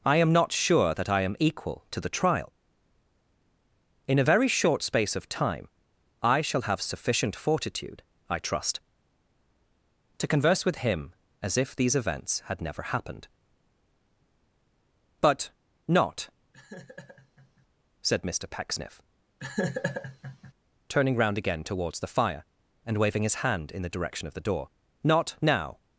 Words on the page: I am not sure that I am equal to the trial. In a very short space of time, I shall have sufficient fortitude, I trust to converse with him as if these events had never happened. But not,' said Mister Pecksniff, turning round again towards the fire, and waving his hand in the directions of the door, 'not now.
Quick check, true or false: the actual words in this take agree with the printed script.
false